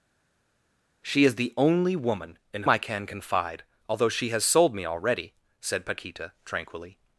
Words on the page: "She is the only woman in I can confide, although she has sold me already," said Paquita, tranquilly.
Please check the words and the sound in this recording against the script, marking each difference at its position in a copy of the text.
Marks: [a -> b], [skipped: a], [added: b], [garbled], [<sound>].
"She is the only woman in I can confide, although she has sold me already," said Paquita, tranquilly.